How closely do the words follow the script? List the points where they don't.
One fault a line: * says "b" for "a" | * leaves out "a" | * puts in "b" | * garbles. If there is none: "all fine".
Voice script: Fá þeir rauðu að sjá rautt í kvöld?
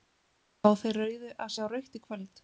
all fine